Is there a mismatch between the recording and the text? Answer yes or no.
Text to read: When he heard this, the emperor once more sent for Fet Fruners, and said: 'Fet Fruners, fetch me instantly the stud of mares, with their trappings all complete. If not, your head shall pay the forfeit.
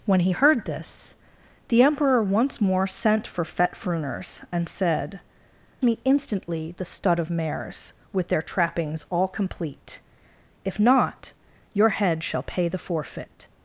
yes